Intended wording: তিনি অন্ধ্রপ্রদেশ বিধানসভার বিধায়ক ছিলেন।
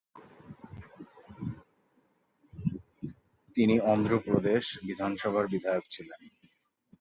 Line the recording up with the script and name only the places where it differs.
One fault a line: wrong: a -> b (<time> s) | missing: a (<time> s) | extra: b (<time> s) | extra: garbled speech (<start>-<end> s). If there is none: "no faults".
no faults